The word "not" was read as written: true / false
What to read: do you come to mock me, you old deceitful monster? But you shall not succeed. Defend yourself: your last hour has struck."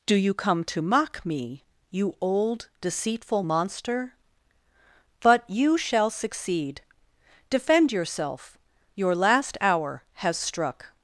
false